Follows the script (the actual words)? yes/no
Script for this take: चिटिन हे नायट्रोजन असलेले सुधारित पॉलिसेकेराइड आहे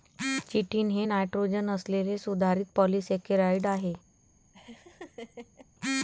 yes